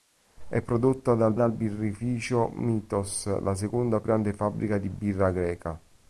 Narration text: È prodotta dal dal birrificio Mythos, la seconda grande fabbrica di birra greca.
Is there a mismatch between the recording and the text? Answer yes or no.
no